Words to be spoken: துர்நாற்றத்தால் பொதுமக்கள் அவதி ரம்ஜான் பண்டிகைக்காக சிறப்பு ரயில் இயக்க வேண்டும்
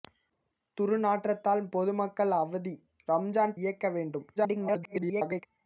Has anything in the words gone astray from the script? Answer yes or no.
yes